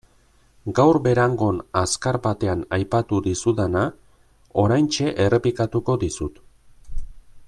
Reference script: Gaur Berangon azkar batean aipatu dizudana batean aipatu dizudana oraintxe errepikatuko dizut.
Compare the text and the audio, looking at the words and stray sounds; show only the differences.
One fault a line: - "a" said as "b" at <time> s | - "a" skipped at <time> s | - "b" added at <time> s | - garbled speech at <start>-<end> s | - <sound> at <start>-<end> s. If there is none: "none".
- "batean aipatu dizudana" skipped at 3.8 s